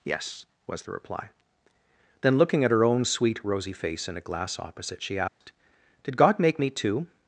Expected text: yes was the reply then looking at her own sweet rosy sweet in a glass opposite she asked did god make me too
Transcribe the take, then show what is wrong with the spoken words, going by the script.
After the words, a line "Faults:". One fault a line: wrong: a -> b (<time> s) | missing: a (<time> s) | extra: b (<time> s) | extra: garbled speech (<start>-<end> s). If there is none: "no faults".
yes was the reply then looking at her own sweet rosy face in a glass opposite she asked did god make me too
Faults:
wrong: sweet -> face (3.7 s)